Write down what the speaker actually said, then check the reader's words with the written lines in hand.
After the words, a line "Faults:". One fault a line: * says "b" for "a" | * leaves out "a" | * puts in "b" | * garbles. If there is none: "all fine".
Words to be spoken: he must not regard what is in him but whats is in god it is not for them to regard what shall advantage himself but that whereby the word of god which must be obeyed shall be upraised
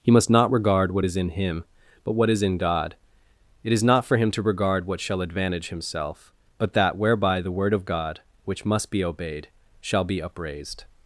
he must not regard what is in him but what is in god it is not for him to regard what shall advantage himself but that whereby the word of god which must be obeyed shall be upraised
Faults:
* says "what" for "whats"
* says "him" for "them"